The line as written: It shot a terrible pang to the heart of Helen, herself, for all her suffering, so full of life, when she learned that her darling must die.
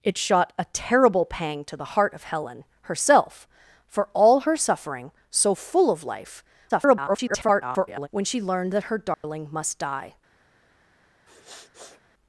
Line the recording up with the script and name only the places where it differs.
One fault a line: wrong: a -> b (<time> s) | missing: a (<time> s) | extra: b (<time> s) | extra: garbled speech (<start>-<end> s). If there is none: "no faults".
extra: garbled speech (6.7-8.1 s)